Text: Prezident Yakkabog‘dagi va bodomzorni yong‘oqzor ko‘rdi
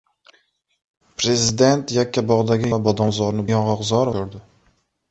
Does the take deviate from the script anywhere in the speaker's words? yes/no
no